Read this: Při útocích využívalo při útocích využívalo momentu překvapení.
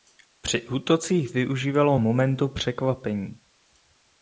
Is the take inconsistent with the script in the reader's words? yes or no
yes